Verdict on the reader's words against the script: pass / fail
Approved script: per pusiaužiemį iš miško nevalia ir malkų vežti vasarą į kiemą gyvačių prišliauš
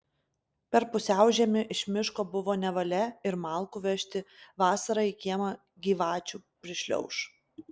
fail